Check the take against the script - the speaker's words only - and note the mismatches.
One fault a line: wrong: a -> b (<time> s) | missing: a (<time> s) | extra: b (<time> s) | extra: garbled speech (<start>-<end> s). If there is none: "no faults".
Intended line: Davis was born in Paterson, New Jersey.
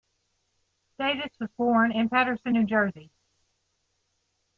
no faults